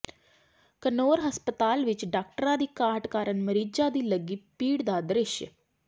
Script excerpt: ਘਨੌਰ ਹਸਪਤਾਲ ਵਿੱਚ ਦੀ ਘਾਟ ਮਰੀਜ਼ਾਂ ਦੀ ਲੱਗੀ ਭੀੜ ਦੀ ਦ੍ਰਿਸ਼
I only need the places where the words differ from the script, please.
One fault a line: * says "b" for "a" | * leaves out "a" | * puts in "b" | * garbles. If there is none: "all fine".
* puts in "ਡਾਕਟਰਾਂ"
* puts in "ਕਾਰਨ"
* says "ਦਾ" for "ਦੀ"